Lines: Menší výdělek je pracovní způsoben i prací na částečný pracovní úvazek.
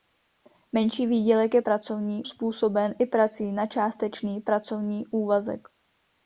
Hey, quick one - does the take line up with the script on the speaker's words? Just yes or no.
yes